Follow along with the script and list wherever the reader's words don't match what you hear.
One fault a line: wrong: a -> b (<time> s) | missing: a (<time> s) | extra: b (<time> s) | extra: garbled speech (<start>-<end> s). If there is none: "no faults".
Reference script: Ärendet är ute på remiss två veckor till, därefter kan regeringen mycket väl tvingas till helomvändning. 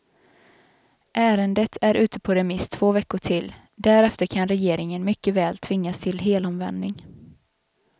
no faults